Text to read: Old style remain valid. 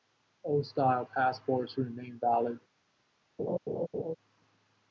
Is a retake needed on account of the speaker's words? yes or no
yes